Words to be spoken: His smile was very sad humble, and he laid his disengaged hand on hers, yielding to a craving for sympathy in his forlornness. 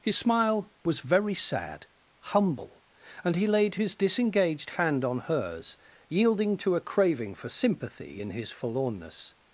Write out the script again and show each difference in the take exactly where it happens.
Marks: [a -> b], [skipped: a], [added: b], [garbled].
His smile was very sad humble, and he laid his disengaged hand on hers, yielding to a craving for sympathy in his forlornness.